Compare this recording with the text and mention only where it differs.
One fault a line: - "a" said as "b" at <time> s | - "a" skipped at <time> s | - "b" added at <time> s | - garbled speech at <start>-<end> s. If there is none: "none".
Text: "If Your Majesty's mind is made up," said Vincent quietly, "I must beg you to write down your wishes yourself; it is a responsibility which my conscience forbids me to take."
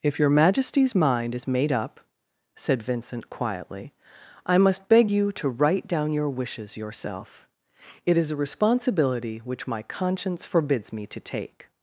none